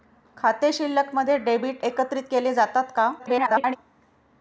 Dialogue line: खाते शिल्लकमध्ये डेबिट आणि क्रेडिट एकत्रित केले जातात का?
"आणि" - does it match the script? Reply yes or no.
no